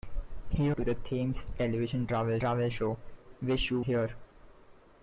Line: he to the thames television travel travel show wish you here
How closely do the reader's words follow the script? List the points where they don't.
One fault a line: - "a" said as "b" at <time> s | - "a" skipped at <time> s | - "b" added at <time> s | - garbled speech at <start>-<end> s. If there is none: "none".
none